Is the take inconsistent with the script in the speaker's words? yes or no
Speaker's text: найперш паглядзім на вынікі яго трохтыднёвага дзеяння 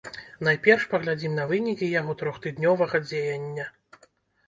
no